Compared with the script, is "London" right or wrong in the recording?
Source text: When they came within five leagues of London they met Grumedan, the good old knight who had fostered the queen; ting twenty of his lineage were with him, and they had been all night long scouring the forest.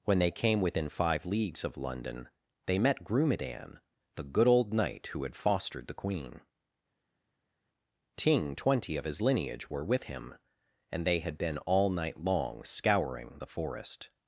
right